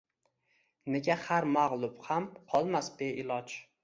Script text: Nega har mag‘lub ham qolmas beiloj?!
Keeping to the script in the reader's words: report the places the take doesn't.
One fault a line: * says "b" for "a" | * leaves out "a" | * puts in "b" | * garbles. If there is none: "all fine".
all fine